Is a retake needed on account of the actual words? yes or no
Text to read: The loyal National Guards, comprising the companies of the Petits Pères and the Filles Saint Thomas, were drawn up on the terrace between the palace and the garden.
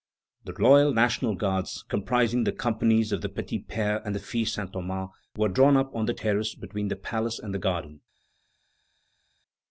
no